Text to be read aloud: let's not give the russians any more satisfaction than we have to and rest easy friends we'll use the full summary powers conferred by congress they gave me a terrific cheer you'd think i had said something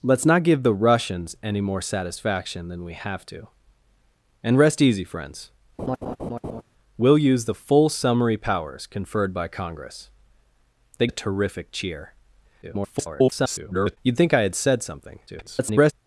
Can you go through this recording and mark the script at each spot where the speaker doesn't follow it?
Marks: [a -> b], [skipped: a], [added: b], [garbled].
let's not give the russians any more satisfaction than we have to and rest easy friends we'll use the full summary powers conferred by congress they [skipped: gave me] a terrific cheer [garbled] you'd think i had said something [garbled]